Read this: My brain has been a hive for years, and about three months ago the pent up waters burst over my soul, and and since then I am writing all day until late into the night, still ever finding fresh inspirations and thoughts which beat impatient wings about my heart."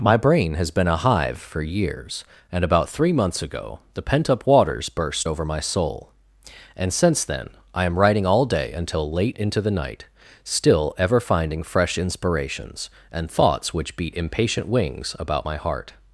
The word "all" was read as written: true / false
true